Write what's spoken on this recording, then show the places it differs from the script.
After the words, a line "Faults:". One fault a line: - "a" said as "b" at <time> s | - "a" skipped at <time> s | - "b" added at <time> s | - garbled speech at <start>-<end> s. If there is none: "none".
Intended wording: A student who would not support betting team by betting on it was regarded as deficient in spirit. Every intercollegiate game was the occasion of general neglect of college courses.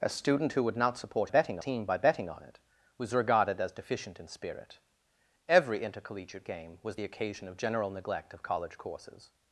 A student who would not support betting team by betting on it was regarded as deficient in spirit. Every intercollegiate game was the occasion of general neglect of college courses.
Faults:
none